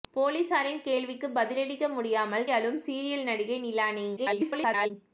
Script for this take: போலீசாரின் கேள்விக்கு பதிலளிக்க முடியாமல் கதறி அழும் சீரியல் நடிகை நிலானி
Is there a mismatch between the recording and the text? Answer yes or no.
yes